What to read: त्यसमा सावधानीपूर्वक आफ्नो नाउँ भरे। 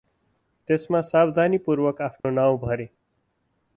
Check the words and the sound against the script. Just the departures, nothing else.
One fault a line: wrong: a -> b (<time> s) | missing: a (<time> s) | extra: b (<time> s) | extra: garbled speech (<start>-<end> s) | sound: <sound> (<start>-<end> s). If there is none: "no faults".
sound: dropout (2.2-2.2 s)